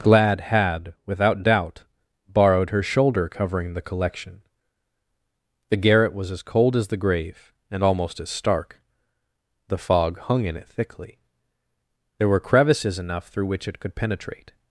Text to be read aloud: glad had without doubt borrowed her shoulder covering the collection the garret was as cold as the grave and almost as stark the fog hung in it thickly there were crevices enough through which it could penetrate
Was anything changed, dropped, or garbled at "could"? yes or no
no